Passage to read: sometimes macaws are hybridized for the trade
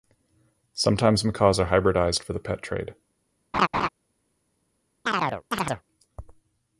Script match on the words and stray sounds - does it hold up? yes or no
no